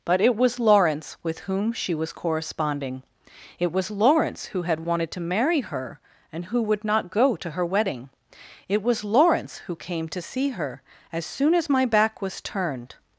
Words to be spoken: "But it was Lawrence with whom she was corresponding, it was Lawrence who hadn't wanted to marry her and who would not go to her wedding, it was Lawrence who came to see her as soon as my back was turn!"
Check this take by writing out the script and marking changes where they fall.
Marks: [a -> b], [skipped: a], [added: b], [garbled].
"But it was Lawrence with whom she was corresponding, it was Lawrence who [hadn't -> had] wanted to marry her and who would not go to her wedding, it was Lawrence who came to see her as soon as my back was [turn!" -> turned]